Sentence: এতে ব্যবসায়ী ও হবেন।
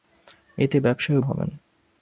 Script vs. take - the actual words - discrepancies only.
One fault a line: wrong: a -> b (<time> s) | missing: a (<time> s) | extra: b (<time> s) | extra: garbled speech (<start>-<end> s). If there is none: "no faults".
no faults